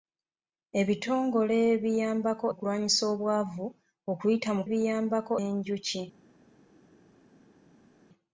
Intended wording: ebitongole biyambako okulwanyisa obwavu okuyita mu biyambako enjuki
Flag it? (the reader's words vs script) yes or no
no